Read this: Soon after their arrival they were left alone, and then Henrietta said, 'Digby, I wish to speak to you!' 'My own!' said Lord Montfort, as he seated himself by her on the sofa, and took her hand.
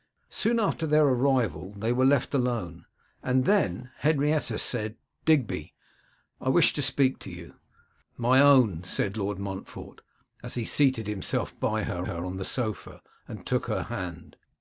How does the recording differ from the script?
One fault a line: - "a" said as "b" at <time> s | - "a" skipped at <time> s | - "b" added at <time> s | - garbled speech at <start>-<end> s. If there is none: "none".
- "her" added at 12.0 s